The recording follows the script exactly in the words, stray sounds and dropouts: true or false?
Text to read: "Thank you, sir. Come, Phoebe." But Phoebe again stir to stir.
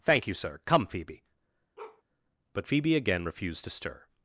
false